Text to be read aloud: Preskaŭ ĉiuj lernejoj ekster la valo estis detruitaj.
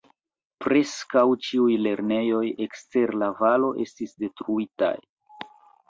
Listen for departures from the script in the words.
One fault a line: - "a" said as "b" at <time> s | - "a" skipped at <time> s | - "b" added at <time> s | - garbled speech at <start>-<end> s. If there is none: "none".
none